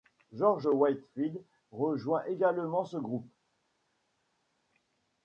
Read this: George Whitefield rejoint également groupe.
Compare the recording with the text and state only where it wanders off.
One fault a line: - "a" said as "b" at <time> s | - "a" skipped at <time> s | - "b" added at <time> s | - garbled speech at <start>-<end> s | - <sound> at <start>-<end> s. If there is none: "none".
- "ce" added at 2.9 s